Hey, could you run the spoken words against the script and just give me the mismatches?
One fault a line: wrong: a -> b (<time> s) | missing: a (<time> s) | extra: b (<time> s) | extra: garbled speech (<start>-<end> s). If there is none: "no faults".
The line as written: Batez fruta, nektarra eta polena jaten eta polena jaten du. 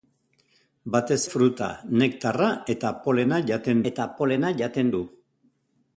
no faults